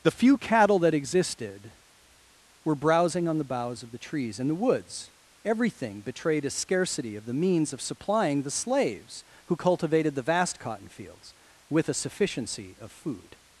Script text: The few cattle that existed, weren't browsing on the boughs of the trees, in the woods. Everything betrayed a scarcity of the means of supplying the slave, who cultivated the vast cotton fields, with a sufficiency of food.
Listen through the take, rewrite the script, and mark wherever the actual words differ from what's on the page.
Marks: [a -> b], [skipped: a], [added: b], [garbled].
The few cattle that existed, [weren't -> were] browsing on the boughs of the trees, in the woods. Everything betrayed a scarcity of the means of supplying the [slave, -> slaves] who cultivated the vast cotton fields, with a sufficiency of food.